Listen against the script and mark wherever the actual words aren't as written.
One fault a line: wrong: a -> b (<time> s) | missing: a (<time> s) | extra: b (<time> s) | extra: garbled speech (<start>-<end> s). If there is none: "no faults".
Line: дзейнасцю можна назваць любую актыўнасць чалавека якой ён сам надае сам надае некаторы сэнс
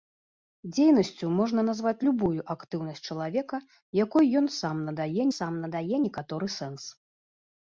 no faults